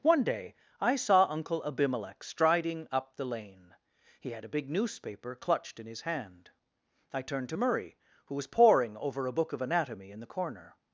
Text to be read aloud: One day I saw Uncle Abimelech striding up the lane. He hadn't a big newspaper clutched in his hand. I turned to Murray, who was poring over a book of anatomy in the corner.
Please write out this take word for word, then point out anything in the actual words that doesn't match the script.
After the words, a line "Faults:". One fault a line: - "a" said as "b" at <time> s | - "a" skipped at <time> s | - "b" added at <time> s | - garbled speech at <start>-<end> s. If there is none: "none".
One day I saw Uncle Abimelech striding up the lane. He had a big newspaper clutched in his hand. I turned to Murray, who was poring over a book of anatomy in the corner.
Faults:
- "hadn't" said as "had" at 4.3 s